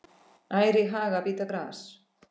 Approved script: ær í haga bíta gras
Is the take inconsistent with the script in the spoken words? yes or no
no